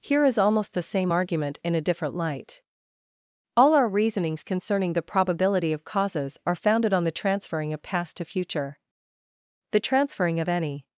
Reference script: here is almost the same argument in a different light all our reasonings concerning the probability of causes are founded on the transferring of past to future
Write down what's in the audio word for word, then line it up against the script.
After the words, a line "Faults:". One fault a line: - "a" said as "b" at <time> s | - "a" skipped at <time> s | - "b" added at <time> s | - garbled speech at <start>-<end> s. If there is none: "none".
here is almost the same argument in a different light all our reasonings concerning the probability of causes are founded on the transferring of past to future the transferring of any
Faults:
- "the transferring of any" added at 9.7 s